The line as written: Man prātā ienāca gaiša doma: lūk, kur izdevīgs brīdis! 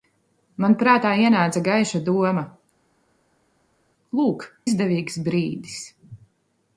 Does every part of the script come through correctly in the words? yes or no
no